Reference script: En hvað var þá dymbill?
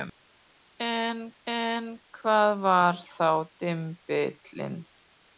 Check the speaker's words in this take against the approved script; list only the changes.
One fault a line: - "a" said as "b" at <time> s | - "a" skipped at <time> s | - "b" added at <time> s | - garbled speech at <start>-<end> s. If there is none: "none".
- "en" added at 1.5 s